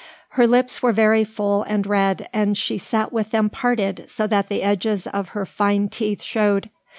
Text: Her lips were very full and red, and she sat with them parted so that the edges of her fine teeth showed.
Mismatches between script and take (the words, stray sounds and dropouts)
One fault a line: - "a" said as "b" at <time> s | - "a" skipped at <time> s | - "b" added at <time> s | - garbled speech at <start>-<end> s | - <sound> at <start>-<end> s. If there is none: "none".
none